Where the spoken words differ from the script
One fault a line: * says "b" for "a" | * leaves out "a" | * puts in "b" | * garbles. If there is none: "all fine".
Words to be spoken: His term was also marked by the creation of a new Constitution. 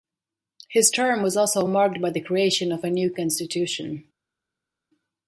all fine